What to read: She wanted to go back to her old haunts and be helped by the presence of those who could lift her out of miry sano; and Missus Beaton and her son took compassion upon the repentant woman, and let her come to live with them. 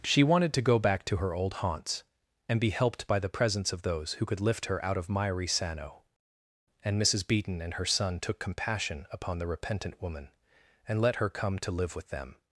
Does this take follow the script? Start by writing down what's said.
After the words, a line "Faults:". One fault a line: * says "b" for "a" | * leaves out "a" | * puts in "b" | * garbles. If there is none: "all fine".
She wanted to go back to her old haunts and be helped by the presence of those who could lift her out of miry sano; and Missus Beaton and her son took compassion upon the repentant woman, and let her come to live with them.
Faults:
all fine